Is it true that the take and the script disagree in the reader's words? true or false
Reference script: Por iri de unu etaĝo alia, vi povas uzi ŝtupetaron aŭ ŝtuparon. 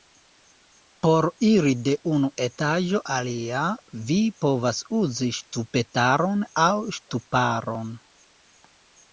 false